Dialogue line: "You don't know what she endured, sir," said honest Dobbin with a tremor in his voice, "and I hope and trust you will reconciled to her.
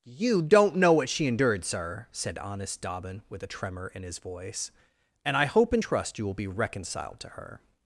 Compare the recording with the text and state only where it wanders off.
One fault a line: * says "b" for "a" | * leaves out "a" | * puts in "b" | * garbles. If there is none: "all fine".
* puts in "be"